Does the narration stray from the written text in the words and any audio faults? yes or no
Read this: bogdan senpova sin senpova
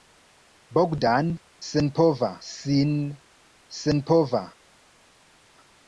no